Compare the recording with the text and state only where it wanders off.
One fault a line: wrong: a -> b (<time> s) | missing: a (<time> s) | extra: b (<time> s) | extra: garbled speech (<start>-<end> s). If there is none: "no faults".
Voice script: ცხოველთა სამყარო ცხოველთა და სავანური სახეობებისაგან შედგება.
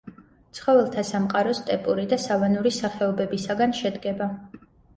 wrong: ცხოველთა -> სტეპური (1.6 s)